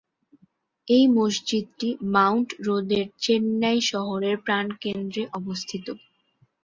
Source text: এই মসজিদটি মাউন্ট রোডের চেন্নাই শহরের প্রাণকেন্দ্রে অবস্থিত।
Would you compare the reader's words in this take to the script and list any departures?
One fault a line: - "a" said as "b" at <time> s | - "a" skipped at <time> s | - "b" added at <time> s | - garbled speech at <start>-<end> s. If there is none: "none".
none